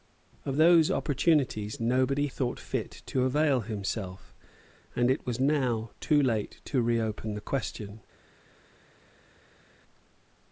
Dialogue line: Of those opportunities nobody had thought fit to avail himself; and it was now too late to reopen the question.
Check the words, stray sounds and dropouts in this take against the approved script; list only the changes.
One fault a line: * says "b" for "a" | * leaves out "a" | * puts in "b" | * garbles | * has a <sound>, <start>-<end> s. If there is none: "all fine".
* leaves out "had"